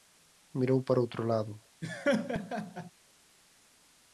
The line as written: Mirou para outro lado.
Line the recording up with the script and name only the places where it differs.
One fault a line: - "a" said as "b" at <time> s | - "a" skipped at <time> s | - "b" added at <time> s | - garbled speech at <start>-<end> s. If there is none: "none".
none